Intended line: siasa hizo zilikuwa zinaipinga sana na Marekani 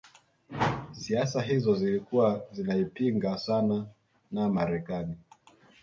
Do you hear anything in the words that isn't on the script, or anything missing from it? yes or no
no